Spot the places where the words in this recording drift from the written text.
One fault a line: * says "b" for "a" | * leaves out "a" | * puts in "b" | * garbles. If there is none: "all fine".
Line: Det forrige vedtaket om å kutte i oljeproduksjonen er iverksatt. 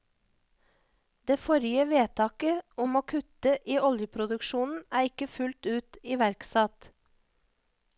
* puts in "ikke fullt ut"